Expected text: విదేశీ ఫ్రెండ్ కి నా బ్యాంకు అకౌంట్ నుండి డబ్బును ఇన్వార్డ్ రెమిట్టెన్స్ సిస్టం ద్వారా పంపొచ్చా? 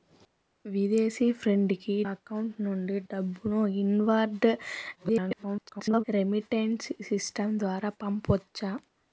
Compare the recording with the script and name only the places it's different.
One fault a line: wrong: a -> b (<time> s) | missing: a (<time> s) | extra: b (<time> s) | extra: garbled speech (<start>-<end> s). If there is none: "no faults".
missing: నా బ్యాంకు (1.9 s)
extra: garbled speech (5.0-6.0 s)